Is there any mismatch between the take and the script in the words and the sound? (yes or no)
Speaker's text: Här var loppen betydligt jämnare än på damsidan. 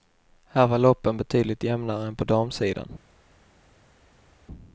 no